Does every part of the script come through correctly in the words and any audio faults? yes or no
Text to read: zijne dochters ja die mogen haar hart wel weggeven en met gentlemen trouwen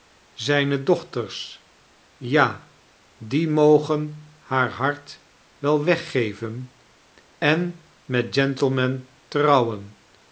yes